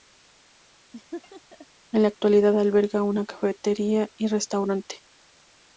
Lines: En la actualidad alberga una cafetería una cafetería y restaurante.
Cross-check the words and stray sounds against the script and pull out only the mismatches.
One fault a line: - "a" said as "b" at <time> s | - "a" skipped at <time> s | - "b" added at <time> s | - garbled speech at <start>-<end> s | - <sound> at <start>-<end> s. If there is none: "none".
- laugh at 0.9-1.7 s
- "una cafetería" skipped at 4.1 s